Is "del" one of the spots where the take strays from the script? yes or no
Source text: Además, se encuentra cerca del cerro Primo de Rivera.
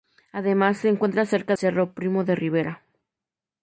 yes